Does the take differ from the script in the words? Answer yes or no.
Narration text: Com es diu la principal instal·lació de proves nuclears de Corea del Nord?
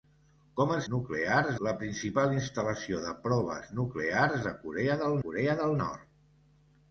yes